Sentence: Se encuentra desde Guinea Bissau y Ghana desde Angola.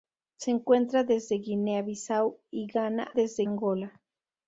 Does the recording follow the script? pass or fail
pass